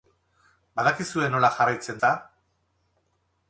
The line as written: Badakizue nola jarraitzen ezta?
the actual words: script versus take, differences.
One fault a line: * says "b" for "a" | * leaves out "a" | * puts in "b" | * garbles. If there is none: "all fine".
all fine